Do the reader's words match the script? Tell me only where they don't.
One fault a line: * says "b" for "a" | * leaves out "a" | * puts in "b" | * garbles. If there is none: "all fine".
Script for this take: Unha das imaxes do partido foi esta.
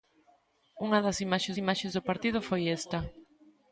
* puts in "imaxes"